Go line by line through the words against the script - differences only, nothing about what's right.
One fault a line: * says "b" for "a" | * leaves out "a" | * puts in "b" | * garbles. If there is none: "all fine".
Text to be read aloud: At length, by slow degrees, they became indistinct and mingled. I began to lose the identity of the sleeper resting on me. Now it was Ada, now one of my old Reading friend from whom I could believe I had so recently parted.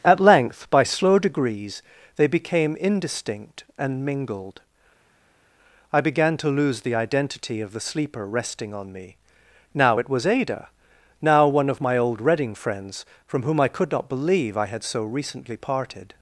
* says "friends" for "friend"
* puts in "not"